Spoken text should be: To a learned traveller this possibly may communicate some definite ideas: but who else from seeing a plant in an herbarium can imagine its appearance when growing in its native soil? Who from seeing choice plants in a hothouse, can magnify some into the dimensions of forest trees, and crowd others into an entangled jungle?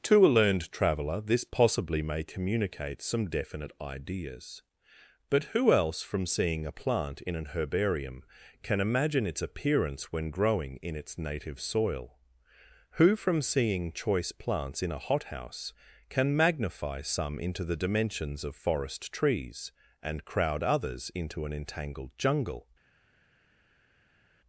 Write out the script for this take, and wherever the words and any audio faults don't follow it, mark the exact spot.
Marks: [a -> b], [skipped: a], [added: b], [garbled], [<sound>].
To a learned traveller this possibly may communicate some definite ideas: but who else from seeing a plant in an herbarium can imagine its appearance when growing in its native soil? Who from seeing choice plants in a hothouse, can magnify some into the dimensions of forest trees, and crowd others into an entangled jungle?